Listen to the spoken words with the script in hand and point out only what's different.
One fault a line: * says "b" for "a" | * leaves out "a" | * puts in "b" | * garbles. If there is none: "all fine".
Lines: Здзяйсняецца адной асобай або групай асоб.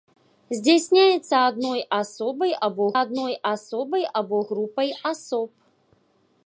* puts in "адной асобай або"